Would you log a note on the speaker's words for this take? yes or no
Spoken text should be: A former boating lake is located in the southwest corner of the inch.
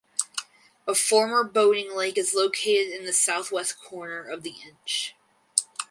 no